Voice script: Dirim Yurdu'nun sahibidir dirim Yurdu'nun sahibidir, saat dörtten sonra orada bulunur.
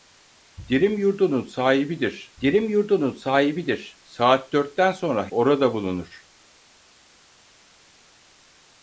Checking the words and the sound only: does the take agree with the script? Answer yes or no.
yes